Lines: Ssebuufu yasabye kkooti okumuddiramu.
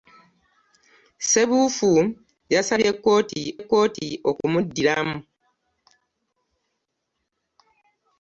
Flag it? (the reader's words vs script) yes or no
yes